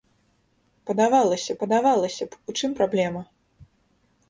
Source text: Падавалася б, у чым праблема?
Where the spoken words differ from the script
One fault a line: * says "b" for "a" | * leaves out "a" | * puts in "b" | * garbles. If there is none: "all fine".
* puts in "падавалася"